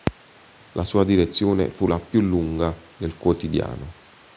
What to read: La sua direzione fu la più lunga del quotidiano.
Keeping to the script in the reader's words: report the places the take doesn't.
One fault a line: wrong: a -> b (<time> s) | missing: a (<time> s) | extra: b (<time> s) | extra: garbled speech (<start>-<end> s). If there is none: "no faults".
no faults